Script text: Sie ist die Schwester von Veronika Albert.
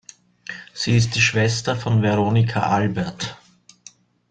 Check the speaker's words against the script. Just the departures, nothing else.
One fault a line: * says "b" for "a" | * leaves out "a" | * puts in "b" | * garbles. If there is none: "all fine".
all fine